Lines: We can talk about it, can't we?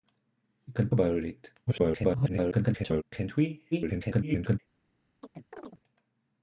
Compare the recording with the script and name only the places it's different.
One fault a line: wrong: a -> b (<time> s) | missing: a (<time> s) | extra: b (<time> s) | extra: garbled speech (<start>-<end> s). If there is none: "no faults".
missing: talk (0.9 s)
extra: garbled speech (1.7-3.0 s)
extra: garbled speech (3.7-4.6 s)